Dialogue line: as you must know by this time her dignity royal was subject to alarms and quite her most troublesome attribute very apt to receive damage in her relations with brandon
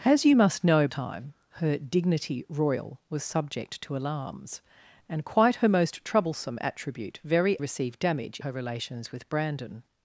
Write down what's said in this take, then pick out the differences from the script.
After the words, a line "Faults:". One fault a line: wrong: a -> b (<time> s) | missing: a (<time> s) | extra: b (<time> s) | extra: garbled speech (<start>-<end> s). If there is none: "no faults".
as you must know time her dignity royal was subject to alarms and quite her most troublesome attribute very receive damage her relations with brandon
Faults:
missing: by this (0.9 s)
missing: apt to (7.6 s)
missing: in (8.4 s)